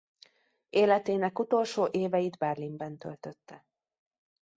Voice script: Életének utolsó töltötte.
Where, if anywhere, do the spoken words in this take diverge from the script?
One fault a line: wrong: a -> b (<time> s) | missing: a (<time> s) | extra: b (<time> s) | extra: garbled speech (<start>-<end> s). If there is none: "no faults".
extra: éveit Berlinben (1.9 s)